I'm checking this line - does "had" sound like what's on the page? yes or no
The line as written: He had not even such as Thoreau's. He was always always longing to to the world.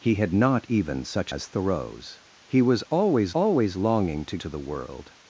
yes